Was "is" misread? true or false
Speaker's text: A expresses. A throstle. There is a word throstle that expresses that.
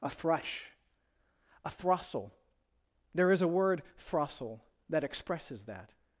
false